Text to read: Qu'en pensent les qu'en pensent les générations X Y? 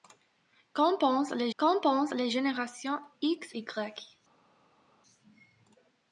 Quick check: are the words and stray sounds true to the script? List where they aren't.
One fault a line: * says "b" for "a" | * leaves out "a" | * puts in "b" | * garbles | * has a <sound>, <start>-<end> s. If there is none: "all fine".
all fine